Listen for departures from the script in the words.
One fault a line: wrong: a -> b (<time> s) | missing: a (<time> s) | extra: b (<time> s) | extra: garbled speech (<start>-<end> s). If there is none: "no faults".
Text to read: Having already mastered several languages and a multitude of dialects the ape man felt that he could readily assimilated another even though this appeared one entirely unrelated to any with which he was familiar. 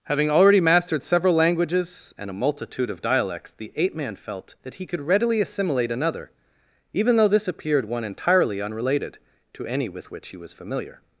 wrong: assimilated -> assimilate (5.4 s)